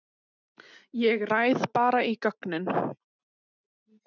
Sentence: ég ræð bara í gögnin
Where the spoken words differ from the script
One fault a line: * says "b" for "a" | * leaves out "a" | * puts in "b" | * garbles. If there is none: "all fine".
all fine